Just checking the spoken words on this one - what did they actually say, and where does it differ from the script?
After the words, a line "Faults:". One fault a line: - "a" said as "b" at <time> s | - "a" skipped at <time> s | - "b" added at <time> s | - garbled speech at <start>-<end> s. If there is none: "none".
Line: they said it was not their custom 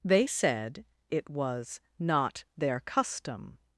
they said it was not their custom
Faults:
none